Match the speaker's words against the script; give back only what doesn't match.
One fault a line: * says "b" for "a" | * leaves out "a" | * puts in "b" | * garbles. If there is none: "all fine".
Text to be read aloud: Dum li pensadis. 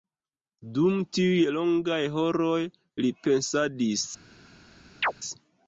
* puts in "tiuj longaj horoj"